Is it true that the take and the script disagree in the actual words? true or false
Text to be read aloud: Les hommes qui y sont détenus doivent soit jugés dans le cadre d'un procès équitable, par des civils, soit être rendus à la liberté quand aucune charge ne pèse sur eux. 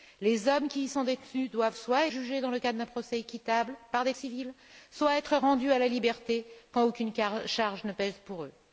false